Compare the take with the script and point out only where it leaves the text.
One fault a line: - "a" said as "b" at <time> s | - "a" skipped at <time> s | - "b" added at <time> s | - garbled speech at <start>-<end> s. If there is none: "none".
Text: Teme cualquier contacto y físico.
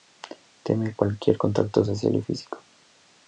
- "social" added at 1.8 s